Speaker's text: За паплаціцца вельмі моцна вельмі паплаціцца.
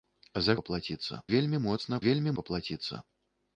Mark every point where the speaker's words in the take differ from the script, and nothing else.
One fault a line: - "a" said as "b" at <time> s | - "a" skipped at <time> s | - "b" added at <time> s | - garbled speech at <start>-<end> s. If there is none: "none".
none